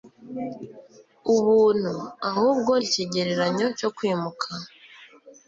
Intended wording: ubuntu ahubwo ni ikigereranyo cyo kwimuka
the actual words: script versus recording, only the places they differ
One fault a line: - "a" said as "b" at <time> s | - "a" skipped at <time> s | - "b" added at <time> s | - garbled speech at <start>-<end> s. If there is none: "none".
- "ni" skipped at 2.7 s